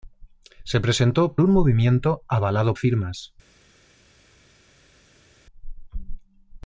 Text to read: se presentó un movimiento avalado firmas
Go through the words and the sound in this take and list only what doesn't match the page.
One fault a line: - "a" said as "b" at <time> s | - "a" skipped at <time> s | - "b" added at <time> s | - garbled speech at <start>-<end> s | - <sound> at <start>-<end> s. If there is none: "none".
none